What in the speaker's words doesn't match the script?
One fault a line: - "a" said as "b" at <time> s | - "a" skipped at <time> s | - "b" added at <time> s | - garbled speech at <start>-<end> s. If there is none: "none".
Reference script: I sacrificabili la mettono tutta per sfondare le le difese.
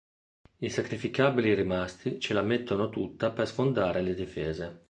- "rimasti ce" added at 1.5 s
- "le" skipped at 4.2 s